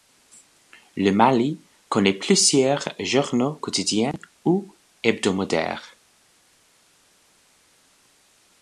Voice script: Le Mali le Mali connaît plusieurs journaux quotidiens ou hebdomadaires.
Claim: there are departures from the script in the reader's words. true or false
true